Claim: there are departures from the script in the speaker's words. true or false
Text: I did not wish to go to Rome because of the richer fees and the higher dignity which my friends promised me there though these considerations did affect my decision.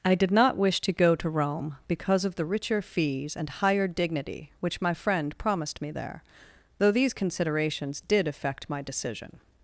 true